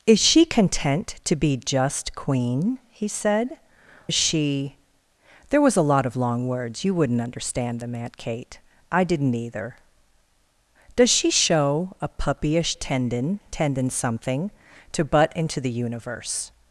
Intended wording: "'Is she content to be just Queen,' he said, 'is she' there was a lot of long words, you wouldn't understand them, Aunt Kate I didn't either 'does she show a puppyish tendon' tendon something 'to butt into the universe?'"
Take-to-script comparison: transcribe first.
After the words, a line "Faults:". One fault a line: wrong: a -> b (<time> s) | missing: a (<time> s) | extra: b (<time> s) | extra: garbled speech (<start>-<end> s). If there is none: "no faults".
"'Is she content to be just Queen,' he said, 'is she' there was a lot of long words, you wouldn't understand them, Aunt Kate I didn't either 'does she show a puppyish tendon' tendon something 'to butt into the universe?'"
Faults:
no faults